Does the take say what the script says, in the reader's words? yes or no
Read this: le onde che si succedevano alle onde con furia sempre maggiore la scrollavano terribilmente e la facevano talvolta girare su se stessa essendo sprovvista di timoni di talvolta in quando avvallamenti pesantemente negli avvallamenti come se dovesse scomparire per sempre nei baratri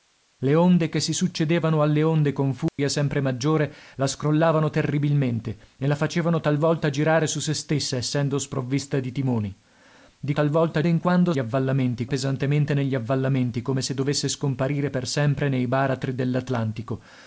yes